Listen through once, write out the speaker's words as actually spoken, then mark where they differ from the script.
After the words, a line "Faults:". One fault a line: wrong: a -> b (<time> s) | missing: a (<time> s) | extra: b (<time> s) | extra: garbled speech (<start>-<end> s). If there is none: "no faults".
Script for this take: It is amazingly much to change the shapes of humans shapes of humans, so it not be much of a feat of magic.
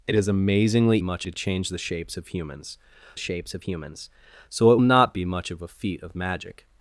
It is amazingly much to change the shapes of humans shapes of humans, so it not be much of a feat of magic.
Faults:
no faults